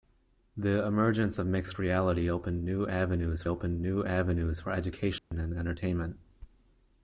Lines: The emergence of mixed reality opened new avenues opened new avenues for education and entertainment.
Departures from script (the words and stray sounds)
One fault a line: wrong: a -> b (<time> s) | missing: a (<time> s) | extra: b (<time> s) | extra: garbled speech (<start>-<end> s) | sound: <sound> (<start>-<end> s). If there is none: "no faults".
sound: dropout (5.2-5.3 s)